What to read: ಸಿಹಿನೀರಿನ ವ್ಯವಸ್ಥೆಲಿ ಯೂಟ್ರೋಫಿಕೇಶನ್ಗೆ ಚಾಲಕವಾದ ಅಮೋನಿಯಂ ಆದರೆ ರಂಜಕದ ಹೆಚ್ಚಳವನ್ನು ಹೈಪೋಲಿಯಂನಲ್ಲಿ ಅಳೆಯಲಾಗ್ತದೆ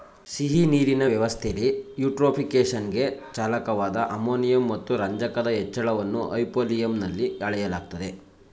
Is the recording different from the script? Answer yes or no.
yes